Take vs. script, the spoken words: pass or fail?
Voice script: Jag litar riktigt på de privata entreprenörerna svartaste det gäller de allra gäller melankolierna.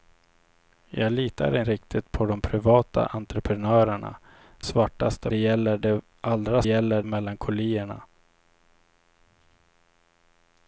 pass